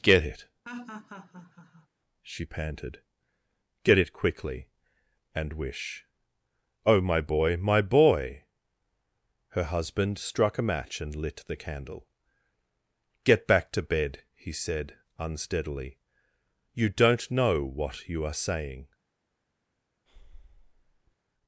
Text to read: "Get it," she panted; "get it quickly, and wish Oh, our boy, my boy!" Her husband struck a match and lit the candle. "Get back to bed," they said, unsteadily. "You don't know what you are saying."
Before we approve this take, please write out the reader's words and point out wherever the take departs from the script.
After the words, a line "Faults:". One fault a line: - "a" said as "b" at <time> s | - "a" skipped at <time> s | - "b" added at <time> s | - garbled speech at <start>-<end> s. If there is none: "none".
"Get it," she panted; "get it quickly, and wish Oh, my boy, my boy!" Her husband struck a match and lit the candle. "Get back to bed," he said, unsteadily. "You don't know what you are saying."
Faults:
- "our" said as "my" at 7.0 s
- "they" said as "he" at 14.3 s